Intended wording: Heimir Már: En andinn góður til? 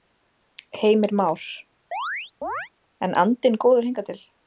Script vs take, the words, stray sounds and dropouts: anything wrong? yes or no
yes